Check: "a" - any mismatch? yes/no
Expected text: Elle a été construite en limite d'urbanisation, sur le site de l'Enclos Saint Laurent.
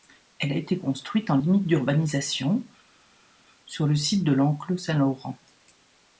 no